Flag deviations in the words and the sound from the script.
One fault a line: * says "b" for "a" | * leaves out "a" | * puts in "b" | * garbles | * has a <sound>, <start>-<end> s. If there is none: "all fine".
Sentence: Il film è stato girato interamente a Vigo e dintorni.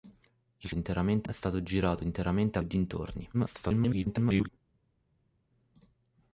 * says "interamente" for "film"
* leaves out "Vigo"
* garbles